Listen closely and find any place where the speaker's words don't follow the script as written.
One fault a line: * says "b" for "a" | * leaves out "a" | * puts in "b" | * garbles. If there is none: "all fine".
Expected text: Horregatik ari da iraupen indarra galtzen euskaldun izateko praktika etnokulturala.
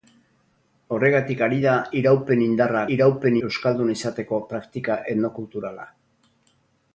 * says "iraupen" for "galtzen"